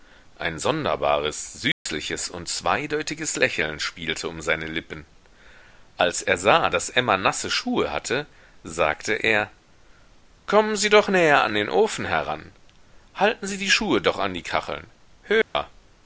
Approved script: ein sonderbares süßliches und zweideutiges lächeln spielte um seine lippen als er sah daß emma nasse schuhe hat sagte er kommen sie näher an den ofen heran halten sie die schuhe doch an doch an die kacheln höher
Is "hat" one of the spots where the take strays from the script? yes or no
yes